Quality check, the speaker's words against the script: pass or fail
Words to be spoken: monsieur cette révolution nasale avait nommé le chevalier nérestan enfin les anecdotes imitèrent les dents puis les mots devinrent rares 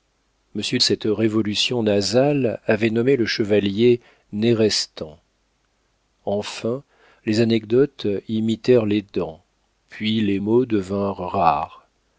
pass